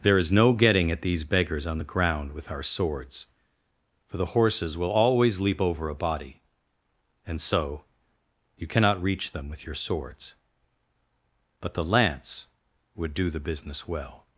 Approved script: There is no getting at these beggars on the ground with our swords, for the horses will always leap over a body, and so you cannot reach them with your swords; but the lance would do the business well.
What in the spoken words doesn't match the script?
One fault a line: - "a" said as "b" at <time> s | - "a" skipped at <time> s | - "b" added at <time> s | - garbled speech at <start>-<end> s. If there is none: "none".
none